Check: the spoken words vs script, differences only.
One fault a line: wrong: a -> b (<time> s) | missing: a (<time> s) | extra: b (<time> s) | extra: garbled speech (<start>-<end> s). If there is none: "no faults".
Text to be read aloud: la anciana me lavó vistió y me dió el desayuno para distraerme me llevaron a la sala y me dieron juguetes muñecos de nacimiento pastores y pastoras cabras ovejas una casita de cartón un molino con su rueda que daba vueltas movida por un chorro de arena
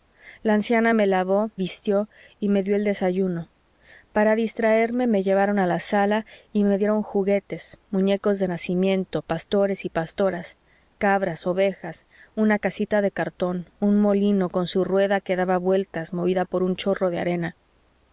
no faults